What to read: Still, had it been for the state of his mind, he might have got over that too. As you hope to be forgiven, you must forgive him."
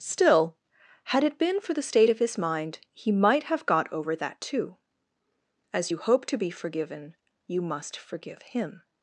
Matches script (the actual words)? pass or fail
pass